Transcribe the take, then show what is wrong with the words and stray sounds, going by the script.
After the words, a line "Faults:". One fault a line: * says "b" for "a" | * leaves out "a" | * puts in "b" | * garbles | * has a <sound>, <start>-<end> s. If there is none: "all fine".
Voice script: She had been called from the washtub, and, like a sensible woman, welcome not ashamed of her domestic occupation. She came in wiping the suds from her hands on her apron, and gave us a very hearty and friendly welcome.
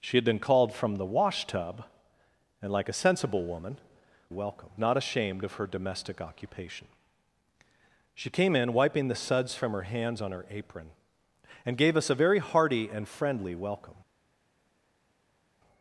She had been called from the washtub, and, like a sensible woman, welcome not ashamed of her domestic occupation. She came in wiping the suds from her hands on her apron, and gave us a very hearty and friendly welcome.
Faults:
all fine